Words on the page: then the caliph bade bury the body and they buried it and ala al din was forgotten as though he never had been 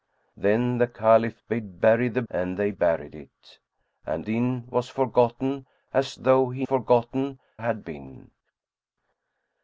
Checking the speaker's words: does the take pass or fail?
fail